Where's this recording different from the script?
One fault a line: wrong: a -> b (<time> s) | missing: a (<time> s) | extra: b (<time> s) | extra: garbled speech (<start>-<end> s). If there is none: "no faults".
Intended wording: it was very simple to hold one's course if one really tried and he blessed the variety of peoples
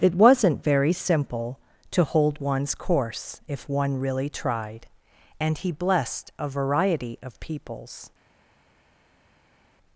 wrong: was -> wasn't (0.1 s)
wrong: the -> a (6.4 s)